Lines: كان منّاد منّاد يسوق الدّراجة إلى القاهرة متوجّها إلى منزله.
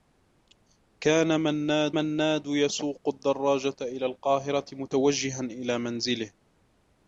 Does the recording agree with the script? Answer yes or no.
yes